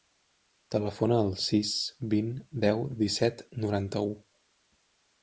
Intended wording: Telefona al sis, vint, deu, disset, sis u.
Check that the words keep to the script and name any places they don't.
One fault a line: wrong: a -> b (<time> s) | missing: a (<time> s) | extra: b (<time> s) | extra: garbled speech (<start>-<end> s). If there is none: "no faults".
wrong: sis -> noranta (3.7 s)